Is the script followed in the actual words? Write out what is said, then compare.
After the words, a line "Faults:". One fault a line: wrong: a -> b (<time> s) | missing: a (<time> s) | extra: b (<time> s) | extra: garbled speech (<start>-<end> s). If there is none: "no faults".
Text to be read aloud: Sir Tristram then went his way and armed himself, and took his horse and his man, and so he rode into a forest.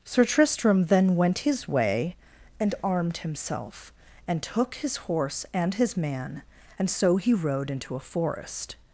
Sir Tristram then went his way and armed himself, and took his horse and his man, and so he rode into a forest.
Faults:
no faults